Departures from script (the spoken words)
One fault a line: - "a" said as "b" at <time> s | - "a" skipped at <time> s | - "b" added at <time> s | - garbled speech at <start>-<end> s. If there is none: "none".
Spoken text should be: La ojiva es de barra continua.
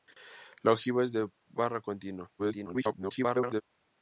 - garbled speech at 2.4-3.6 s